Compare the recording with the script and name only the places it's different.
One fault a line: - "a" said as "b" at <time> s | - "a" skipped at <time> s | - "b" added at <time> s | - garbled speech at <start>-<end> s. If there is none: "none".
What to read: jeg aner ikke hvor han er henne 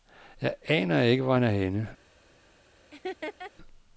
none